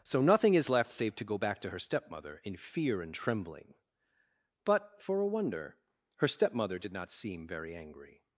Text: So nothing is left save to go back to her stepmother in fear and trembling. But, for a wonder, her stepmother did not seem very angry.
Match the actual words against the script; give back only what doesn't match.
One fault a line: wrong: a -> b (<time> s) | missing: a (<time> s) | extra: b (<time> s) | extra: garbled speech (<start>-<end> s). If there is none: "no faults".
no faults